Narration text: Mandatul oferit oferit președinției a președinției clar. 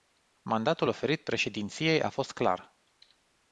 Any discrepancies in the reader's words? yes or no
yes